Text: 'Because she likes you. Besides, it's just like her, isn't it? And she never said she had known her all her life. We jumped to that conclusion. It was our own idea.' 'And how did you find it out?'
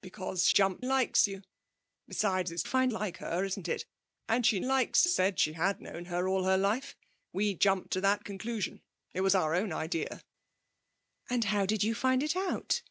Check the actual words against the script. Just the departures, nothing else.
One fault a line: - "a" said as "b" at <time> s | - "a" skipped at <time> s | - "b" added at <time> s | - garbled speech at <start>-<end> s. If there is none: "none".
- "she" said as "jumped" at 0.5 s
- "just" said as "find" at 2.6 s
- "never" said as "likes" at 4.6 s